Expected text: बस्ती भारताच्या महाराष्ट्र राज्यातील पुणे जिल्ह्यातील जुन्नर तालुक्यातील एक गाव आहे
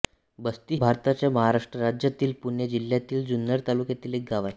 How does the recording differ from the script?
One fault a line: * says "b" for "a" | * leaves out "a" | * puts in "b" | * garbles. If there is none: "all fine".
all fine